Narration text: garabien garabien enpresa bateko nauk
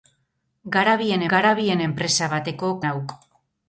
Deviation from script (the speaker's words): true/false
false